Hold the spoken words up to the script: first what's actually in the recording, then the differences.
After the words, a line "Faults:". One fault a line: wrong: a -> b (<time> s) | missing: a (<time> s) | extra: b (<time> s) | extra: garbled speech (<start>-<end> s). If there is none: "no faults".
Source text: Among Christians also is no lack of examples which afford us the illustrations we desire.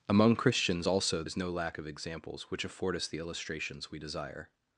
Among Christians also is no lack of examples which afford us the illustrations we desire.
Faults:
no faults